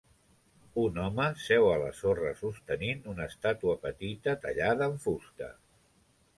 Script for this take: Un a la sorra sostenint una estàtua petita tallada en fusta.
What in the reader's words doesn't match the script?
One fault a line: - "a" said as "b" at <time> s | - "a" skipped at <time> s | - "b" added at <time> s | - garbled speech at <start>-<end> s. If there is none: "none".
- "home seu" added at 1.0 s